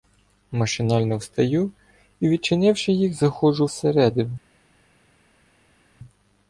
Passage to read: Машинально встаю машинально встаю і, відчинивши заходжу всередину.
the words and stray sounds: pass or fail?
fail